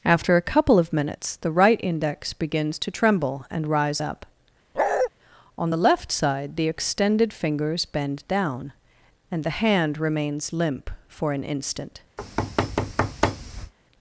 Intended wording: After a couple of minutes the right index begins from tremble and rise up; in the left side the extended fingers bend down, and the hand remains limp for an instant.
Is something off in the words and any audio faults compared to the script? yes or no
yes